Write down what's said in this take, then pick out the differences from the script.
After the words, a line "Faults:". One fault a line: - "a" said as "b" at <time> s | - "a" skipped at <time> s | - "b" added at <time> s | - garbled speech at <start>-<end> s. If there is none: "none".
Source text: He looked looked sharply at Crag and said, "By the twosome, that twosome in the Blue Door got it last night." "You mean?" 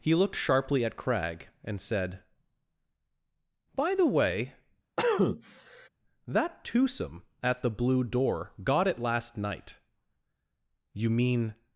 He looked sharply at Crag and said, "By the way, that twosome at the Blue Door got it last night." "You mean?"
Faults:
- "looked" skipped at 0.3 s
- "twosome" said as "way" at 4.1 s
- "in" said as "at" at 7.4 s